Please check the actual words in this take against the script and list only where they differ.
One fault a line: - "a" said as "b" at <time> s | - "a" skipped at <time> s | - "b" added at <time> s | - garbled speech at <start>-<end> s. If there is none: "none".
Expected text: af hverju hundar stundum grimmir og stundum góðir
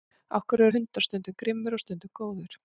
none